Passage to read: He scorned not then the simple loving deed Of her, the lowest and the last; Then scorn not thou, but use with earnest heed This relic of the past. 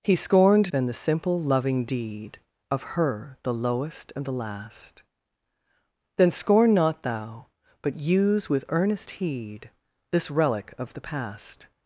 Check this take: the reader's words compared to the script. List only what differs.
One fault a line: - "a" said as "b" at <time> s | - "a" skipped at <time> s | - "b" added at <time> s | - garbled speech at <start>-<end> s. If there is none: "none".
- "not" skipped at 0.7 s